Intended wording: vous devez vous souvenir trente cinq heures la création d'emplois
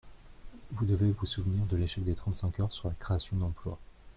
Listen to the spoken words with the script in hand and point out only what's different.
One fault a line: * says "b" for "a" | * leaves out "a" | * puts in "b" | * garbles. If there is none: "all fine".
* puts in "de l'échec des"
* puts in "sur"